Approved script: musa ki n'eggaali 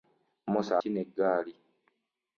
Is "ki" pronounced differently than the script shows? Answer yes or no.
no